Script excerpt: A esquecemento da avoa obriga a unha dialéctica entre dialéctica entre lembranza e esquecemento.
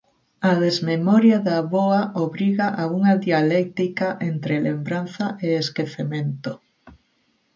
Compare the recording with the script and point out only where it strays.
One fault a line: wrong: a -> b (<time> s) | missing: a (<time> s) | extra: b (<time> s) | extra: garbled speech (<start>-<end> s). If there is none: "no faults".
wrong: esquecemento -> desmemoria (0.7 s)
missing: dialéctica entre (4.5 s)